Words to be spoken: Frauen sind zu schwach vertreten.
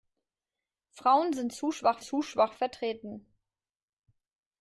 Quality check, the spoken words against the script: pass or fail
fail